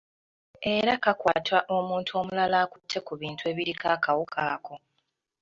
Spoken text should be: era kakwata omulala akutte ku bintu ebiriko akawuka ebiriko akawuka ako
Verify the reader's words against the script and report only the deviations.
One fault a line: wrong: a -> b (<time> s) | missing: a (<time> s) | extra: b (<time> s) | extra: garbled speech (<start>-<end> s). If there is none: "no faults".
extra: omuntu (1.8 s)
missing: ebiriko akawuka (4.4 s)